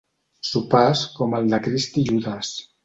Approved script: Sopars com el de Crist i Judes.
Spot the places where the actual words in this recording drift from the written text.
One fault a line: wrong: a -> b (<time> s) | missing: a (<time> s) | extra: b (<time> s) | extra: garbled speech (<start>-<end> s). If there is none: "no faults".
no faults